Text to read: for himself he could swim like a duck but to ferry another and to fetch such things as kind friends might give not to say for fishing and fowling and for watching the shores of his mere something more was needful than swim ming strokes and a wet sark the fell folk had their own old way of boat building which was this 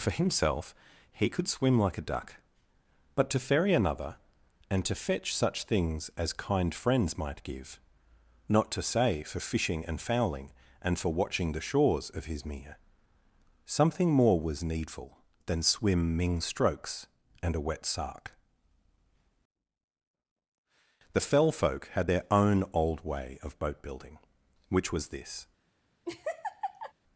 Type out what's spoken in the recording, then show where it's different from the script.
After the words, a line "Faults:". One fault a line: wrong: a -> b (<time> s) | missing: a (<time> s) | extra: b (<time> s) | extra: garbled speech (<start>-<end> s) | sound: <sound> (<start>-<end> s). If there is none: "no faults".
for himself he could swim like a duck but to ferry another and to fetch such things as kind friends might give not to say for fishing and fowling and for watching the shores of his mere something more was needful than swim ming strokes and a wet sark the fell folk had their own old way of boat building which was this
Faults:
sound: laugh (26.0-26.9 s)